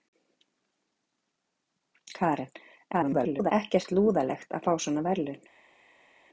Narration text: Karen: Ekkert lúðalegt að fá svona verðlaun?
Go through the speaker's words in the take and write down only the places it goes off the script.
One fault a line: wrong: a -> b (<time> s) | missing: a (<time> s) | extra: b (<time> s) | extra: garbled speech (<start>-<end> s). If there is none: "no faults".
extra: garbled speech (2.9-3.5 s)